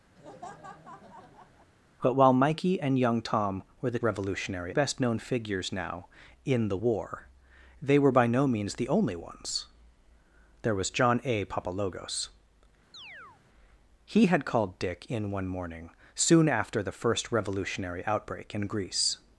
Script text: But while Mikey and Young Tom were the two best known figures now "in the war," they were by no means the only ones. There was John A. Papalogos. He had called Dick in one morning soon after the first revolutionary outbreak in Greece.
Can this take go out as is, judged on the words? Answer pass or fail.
fail